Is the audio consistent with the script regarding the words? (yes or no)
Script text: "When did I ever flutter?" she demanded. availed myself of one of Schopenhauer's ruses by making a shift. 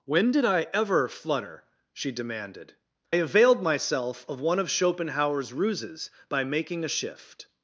yes